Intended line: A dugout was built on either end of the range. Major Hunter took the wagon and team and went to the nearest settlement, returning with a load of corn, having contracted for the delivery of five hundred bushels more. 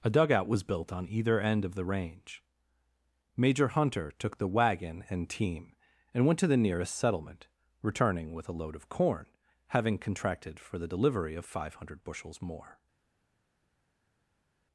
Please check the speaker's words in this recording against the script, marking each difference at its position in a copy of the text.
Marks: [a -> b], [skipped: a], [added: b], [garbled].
A dugout was built on either end of the range. Major Hunter took the wagon and team and went to the nearest settlement, returning with a load of corn, having contracted for the delivery of five hundred bushels more.